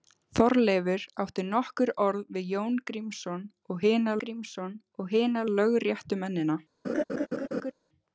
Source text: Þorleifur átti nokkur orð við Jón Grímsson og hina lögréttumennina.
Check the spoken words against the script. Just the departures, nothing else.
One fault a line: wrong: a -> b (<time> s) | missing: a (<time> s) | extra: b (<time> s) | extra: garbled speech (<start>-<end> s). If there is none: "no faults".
extra: Grímsson og hina (4.2 s)